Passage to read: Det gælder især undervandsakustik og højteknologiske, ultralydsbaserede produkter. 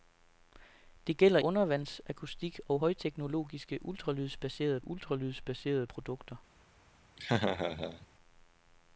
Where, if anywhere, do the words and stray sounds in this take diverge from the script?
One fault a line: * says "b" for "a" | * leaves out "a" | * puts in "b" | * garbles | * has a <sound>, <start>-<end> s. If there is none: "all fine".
* leaves out "især"
* puts in "ultralydsbaserede"
* has a laugh, 7.2-8.1 s